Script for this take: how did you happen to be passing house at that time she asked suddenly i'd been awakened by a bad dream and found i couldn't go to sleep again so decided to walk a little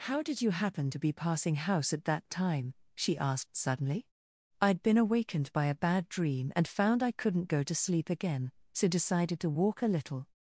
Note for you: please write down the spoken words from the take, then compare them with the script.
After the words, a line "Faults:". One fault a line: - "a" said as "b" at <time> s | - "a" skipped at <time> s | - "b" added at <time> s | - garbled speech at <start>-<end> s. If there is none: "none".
how did you happen to be passing house at that time she asked suddenly i'd been awakened by a bad dream and found i couldn't go to sleep again so decided to walk a little
Faults:
none